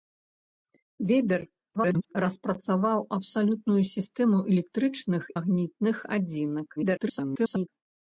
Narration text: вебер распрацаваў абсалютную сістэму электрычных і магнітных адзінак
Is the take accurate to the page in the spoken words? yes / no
no